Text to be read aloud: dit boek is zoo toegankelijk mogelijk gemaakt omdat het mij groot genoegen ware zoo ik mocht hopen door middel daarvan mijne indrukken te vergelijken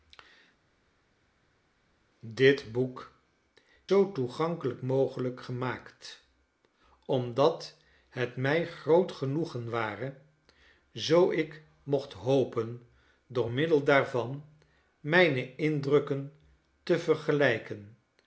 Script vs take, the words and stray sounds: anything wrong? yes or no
yes